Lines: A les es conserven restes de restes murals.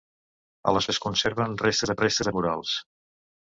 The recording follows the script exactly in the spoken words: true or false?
true